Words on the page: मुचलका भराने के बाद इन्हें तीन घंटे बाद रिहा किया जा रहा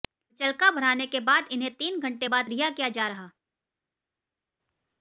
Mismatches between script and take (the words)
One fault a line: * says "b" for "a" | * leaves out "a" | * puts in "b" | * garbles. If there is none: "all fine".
all fine